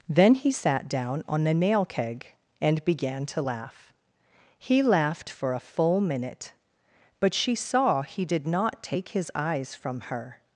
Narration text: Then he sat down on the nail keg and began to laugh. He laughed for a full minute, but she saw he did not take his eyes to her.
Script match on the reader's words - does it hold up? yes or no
no